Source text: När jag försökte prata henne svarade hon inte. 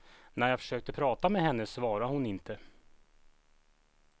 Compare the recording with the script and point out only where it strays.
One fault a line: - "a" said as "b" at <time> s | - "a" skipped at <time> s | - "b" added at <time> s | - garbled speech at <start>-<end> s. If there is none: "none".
- "med" added at 1.3 s